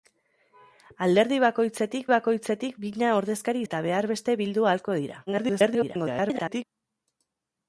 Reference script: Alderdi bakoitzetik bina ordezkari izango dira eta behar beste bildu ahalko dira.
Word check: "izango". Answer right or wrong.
wrong